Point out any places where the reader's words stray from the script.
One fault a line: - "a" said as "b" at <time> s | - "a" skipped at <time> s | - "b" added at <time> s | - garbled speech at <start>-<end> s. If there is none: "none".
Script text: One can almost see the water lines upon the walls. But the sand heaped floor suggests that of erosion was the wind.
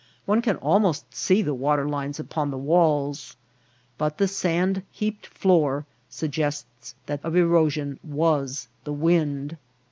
none